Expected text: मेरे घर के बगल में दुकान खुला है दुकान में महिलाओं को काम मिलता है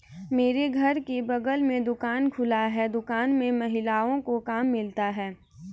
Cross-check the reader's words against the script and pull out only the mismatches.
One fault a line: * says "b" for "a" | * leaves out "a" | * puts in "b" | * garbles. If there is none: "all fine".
all fine